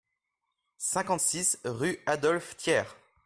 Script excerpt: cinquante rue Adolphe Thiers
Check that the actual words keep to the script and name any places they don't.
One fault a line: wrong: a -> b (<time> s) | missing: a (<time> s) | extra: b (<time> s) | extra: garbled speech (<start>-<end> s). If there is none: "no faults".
extra: six (1.2 s)